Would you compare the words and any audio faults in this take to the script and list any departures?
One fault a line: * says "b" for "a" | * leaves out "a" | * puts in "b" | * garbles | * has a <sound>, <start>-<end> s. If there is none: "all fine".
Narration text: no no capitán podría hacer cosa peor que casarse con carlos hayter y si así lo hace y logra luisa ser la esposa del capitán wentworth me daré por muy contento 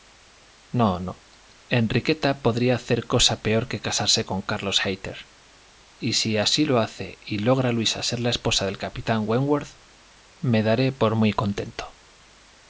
* says "enriqueta" for "capitán"